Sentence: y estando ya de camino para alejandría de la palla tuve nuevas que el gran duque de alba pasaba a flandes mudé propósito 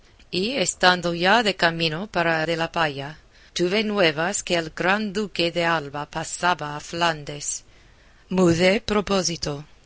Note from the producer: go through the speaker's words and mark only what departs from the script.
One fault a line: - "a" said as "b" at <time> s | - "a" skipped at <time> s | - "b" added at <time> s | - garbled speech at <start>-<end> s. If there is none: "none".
- "alejandría" skipped at 2.4 s